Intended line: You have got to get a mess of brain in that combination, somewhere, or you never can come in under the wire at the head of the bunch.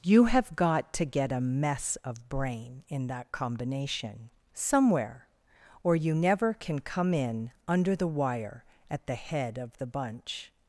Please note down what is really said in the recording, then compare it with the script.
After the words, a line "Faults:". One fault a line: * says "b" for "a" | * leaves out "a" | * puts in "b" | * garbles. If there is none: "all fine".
You have got to get a mess of brain in that combination, somewhere, or you never can come in under the wire at the head of the bunch.
Faults:
all fine